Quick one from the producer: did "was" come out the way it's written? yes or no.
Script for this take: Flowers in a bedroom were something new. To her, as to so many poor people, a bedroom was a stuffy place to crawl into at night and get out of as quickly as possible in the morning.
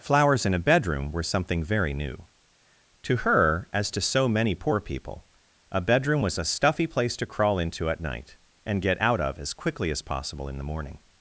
yes